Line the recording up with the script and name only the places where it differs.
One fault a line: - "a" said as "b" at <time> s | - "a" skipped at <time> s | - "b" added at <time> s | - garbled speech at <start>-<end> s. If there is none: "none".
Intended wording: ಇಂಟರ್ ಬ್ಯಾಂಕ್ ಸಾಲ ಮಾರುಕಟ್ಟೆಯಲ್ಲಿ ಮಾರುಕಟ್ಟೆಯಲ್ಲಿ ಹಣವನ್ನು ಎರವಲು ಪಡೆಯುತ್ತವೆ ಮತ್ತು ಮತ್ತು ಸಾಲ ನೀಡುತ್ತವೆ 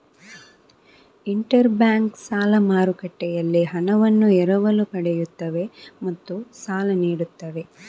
- "ಮಾರುಕಟ್ಟೆಯಲ್ಲಿ" skipped at 3.6 s
- "ಮತ್ತು" skipped at 6.3 s